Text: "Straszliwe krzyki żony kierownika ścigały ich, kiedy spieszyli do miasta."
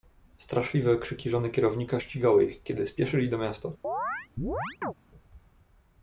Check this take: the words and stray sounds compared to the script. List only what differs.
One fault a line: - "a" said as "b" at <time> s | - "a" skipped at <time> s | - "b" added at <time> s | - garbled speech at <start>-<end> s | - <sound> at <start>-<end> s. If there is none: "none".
- chirp at 3.8-4.9 s